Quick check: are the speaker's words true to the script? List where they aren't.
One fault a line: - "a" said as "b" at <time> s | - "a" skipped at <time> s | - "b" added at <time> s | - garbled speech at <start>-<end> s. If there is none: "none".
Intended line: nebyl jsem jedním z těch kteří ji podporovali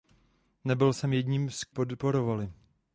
- "těch kteří ji" skipped at 1.6 s